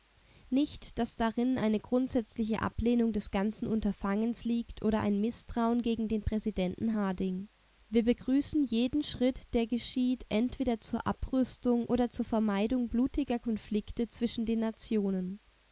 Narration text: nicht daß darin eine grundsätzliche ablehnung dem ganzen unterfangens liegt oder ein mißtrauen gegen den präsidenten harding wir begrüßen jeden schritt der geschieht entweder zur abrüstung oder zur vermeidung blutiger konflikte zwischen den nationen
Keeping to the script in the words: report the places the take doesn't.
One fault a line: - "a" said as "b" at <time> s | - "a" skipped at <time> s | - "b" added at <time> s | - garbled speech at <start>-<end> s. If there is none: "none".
- "dem" said as "des" at 3.1 s